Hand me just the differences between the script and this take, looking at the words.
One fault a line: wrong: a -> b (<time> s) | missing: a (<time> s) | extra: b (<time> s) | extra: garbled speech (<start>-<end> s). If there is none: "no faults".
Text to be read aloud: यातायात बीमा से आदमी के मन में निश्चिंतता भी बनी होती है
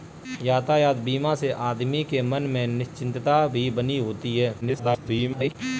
extra: garbled speech (4.6-5.6 s)